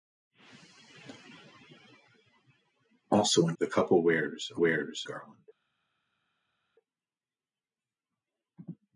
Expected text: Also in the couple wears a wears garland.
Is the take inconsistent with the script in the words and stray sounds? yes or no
no